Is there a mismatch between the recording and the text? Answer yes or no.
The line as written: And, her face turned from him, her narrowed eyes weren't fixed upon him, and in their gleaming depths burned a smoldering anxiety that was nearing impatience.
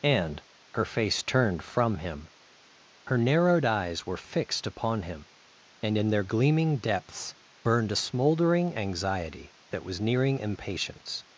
yes